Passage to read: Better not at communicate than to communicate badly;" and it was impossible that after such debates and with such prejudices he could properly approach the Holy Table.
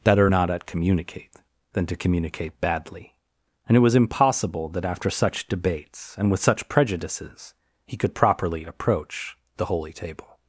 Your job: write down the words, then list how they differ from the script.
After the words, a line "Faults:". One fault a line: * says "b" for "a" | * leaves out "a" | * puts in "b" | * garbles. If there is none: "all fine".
Better not at communicate than to communicate badly;" and it was impossible that after such debates and with such prejudices he could properly approach the Holy Table.
Faults:
all fine